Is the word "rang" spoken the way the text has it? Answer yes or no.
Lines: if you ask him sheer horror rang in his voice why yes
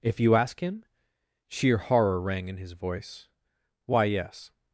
yes